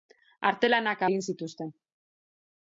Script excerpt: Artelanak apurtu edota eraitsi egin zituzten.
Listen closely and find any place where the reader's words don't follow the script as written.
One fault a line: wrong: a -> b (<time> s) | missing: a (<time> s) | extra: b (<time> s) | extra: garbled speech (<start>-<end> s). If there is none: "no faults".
missing: apurtu edota eraitsi (1.0 s)